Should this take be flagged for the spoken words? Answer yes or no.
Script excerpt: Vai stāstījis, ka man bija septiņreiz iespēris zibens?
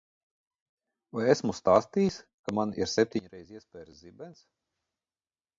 yes